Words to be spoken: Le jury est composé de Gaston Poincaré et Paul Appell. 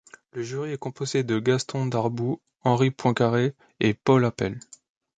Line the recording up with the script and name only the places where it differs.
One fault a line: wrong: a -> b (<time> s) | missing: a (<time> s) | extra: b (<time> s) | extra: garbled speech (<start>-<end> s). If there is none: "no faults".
extra: Darboux Henri (1.9 s)